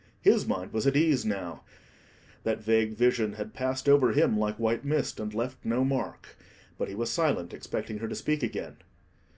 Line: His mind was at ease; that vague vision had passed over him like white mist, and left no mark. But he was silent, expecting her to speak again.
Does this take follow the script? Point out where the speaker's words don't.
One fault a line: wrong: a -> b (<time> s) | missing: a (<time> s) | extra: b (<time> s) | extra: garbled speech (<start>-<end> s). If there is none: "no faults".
extra: now (1.2 s)